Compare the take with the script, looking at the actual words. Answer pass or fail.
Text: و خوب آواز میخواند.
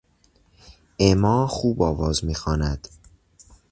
fail